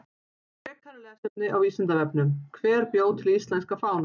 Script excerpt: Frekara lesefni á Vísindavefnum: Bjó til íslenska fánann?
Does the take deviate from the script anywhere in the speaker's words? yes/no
yes